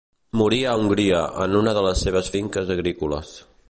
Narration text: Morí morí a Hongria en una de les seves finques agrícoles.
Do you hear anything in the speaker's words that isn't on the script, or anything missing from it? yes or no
yes